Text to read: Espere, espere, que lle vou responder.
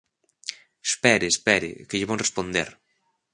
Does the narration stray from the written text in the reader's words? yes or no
no